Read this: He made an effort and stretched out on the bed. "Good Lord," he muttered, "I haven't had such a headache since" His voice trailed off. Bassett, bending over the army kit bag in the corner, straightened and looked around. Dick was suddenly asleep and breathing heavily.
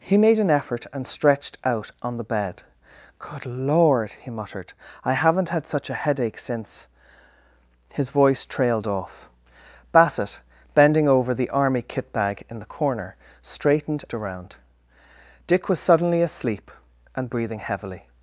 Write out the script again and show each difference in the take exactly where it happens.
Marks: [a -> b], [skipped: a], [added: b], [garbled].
He made an effort and stretched out on the bed. "Good Lord," he muttered, "I haven't had such a headache since" His voice trailed off. Bassett, bending over the army kit bag in the corner, straightened [skipped: and looked] around. Dick was suddenly asleep and breathing heavily.